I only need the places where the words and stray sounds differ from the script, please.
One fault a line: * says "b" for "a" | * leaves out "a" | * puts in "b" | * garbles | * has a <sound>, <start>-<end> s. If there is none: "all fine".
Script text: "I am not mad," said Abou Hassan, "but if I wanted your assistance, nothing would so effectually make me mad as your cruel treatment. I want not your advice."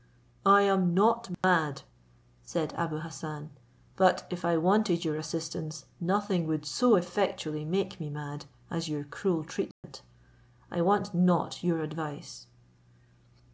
* has a dropout, 1.3-1.4 s
* has a dropout, 9.7-9.8 s